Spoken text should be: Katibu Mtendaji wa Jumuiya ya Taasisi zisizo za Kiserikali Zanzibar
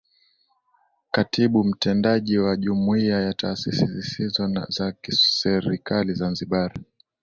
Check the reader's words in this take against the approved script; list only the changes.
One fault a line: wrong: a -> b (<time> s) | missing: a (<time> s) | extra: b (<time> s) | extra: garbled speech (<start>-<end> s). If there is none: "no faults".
no faults